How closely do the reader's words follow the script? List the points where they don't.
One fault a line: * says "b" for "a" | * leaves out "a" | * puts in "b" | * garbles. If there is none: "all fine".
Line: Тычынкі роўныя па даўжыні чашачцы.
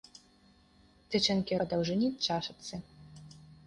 * leaves out "роўныя"